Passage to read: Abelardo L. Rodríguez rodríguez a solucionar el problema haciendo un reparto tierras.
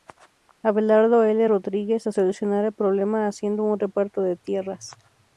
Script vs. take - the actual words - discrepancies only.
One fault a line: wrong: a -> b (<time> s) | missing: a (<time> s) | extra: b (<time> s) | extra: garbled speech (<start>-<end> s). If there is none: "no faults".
missing: rodríguez (2.1 s)
extra: de (4.2 s)